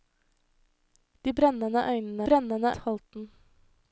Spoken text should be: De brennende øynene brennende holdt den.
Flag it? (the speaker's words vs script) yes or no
no